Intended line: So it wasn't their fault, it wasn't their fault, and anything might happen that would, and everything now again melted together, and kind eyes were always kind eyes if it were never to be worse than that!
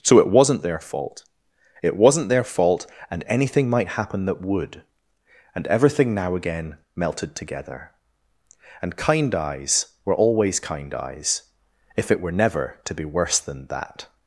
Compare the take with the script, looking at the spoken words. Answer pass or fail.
pass